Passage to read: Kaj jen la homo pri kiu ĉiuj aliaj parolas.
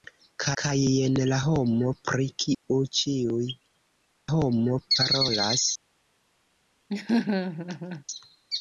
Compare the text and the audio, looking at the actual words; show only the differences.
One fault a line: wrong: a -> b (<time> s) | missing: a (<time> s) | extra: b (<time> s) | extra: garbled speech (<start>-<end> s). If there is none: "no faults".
extra: kaj (0.6 s)
wrong: aliaj -> homo (4.3 s)